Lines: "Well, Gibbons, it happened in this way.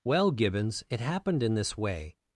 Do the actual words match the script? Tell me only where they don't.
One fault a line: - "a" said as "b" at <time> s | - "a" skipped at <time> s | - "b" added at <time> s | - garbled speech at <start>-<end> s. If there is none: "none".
none